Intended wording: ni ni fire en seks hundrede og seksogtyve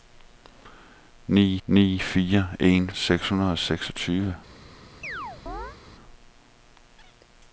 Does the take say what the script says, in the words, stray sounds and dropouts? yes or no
no